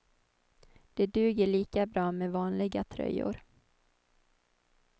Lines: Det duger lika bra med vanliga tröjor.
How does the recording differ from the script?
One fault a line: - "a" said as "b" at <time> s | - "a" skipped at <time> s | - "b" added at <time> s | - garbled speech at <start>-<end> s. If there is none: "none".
none